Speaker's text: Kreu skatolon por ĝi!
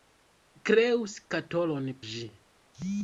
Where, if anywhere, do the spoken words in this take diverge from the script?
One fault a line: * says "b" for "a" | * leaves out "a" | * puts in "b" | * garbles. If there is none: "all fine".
* leaves out "por"